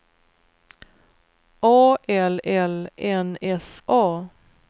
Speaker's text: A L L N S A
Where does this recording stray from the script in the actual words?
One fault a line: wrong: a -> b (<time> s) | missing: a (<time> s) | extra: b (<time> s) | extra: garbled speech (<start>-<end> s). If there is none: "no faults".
no faults